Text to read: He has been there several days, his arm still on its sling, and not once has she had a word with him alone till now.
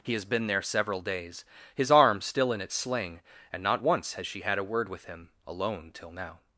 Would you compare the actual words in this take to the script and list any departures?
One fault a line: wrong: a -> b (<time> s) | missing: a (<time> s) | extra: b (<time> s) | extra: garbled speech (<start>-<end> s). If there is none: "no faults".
wrong: on -> in (2.5 s)